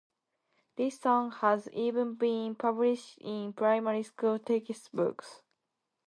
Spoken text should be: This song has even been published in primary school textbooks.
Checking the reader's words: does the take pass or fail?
pass